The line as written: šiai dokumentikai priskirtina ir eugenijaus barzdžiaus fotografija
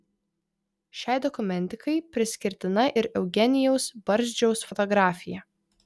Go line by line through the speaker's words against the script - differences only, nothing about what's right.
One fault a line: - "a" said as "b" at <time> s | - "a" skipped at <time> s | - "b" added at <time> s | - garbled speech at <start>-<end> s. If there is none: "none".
none